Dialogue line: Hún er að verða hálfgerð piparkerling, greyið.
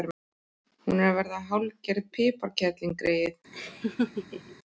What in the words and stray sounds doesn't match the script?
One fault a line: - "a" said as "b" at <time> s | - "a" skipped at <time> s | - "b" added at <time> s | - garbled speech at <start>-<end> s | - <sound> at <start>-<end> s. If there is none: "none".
- laugh at 3.5-4.6 s